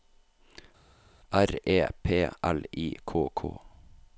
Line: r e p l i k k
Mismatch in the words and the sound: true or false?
false